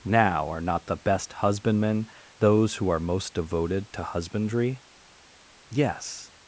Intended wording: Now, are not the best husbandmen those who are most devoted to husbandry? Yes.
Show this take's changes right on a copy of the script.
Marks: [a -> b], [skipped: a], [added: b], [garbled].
Now, are not the best husbandmen those who are most devoted to husbandry? Yes.